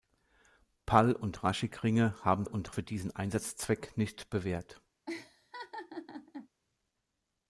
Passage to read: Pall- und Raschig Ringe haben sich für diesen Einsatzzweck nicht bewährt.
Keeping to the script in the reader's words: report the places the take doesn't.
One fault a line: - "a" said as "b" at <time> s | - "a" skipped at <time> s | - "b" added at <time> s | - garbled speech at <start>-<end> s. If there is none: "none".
- "sich" said as "und" at 2.4 s